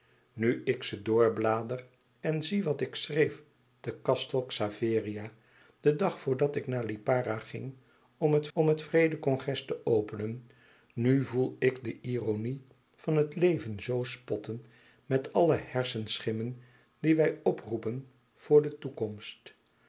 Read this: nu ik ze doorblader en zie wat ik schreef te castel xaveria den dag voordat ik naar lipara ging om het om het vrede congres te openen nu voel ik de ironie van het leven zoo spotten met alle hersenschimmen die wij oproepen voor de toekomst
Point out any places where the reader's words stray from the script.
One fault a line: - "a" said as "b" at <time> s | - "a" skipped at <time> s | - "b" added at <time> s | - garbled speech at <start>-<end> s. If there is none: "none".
none